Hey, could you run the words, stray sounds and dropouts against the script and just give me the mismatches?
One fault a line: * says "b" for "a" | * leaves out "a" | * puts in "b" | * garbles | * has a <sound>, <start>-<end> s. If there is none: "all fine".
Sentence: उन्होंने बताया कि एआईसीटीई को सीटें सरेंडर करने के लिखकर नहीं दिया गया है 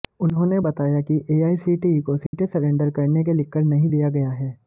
* has a dropout, 2.3-2.3 s